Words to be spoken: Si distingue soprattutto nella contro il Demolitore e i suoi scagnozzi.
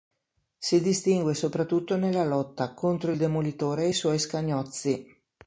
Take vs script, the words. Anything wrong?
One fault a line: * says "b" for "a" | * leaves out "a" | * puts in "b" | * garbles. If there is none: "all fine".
* puts in "lotta"